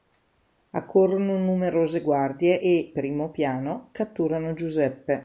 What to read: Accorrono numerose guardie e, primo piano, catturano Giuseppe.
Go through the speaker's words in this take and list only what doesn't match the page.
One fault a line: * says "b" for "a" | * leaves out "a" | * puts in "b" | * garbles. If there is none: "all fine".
all fine